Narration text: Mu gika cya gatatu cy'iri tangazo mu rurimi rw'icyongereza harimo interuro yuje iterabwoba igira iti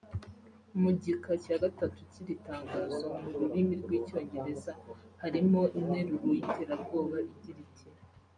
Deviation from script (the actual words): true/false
true